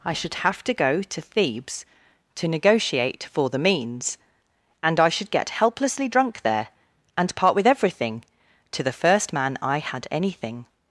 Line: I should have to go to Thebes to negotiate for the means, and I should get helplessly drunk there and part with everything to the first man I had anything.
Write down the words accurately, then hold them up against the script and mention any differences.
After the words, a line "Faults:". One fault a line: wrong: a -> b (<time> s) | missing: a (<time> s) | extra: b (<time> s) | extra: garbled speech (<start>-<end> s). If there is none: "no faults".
I should have to go to Thebes to negotiate for the means, and I should get helplessly drunk there and part with everything to the first man I had anything.
Faults:
no faults